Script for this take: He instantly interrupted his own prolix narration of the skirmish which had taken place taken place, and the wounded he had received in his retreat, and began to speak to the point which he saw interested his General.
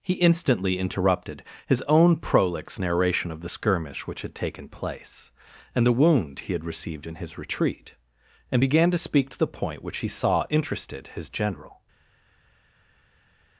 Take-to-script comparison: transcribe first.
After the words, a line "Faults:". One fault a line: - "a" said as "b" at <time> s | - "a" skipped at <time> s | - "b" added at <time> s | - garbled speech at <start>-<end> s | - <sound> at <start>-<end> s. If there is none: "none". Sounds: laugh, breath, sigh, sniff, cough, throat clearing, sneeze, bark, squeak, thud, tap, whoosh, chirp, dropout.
He instantly interrupted his own prolix narration of the skirmish which had taken place, and the wound he had received in his retreat, and began to speak to the point which he saw interested his General.
Faults:
- "taken place" skipped at 5.3 s
- "wounded" said as "wound" at 5.9 s